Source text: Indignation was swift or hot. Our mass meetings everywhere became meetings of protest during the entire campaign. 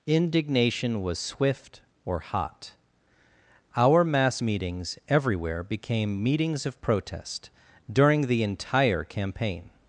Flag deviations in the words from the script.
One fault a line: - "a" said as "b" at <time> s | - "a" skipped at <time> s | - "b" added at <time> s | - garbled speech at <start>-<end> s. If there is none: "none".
none